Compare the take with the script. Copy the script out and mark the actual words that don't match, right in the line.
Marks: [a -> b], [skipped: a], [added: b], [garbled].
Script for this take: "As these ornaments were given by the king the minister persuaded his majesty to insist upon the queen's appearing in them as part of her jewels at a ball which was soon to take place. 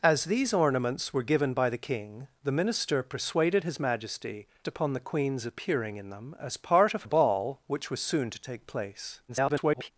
"As these ornaments were given by the king the minister persuaded his majesty [skipped: to insist] upon the queen's appearing in them as part of [skipped: her jewels at] a ball which was soon to take place. [garbled]